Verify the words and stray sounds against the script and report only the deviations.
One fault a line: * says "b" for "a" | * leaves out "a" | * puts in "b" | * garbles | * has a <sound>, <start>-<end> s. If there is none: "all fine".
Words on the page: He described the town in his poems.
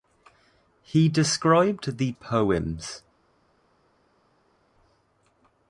* leaves out "town in his"